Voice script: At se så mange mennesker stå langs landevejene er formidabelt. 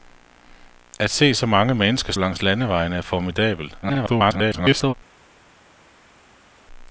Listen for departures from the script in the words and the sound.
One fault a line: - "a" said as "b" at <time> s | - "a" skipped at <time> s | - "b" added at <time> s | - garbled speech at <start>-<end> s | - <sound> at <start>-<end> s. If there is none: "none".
- "stå" skipped at 2.1 s
- garbled speech at 3.8-4.9 s